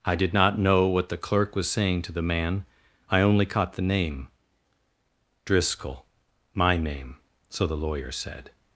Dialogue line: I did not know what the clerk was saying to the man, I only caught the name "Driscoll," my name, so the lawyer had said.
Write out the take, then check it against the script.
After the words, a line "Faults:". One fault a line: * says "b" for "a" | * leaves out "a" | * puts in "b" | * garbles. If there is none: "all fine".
I did not know what the clerk was saying to the man, I only caught the name "Driscoll," my name, so the lawyer said.
Faults:
* leaves out "had"